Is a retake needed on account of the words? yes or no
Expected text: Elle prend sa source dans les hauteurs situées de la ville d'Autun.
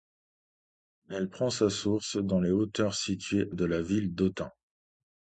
no